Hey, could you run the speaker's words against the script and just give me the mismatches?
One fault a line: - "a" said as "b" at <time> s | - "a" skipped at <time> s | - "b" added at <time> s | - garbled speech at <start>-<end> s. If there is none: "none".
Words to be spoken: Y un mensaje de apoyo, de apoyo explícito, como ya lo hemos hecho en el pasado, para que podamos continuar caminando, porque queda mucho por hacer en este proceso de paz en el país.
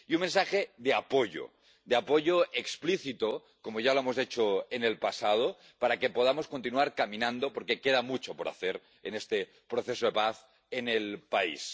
none